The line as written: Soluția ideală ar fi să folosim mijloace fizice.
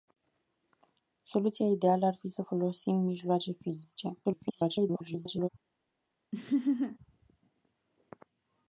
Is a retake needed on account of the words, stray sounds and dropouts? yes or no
yes